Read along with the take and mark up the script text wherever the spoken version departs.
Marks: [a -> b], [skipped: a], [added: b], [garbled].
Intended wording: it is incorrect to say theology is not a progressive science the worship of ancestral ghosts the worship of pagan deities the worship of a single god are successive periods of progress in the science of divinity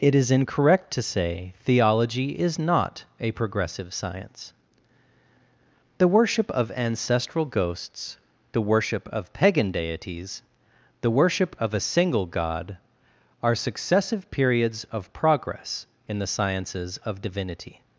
it is incorrect to say theology is not a progressive science the worship of ancestral ghosts the worship of pagan deities the worship of a single god are successive periods of progress in the [science -> sciences] of divinity